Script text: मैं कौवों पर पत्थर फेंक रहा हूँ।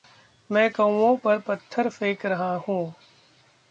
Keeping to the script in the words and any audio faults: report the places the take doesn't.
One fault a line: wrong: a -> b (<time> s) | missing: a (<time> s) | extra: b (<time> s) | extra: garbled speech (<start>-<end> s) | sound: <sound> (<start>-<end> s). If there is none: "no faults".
no faults